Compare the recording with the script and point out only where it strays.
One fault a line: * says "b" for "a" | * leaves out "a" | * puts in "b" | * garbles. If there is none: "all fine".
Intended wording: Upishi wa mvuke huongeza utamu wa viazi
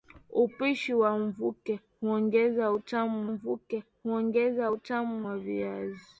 * puts in "mvuke huongeza utamu"